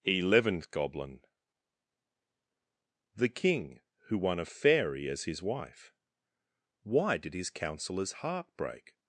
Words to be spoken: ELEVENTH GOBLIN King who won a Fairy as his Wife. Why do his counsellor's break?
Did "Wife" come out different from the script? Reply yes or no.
no